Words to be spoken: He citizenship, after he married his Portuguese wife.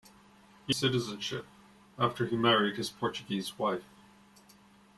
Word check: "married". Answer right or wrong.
right